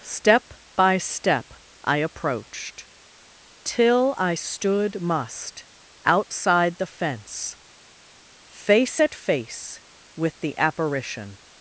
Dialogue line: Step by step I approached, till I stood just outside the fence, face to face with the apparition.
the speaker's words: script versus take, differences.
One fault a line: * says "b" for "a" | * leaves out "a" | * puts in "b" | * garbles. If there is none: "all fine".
* says "must" for "just"
* says "at" for "to"